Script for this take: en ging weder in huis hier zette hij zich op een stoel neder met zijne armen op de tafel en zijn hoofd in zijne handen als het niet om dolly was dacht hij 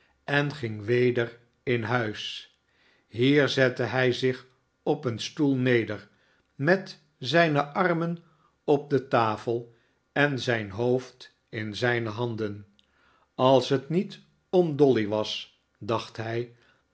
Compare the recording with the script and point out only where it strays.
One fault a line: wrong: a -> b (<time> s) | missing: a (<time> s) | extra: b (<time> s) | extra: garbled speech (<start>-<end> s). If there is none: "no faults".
no faults